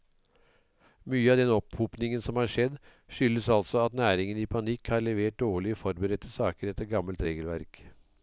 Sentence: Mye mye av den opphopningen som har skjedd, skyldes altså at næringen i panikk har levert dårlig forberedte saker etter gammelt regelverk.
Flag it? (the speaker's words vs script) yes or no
yes